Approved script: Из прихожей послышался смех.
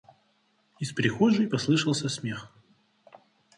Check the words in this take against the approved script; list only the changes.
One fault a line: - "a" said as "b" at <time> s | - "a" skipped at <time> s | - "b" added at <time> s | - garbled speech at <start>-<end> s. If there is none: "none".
none